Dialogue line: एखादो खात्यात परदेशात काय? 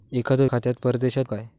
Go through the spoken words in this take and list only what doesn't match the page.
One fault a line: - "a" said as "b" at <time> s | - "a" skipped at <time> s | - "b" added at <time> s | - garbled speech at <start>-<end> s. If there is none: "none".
none